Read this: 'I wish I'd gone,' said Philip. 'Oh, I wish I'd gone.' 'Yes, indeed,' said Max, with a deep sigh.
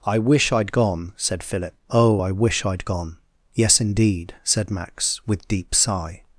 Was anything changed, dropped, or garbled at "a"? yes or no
yes